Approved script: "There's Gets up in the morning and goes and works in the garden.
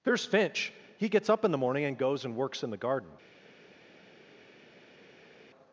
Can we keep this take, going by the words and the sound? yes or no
no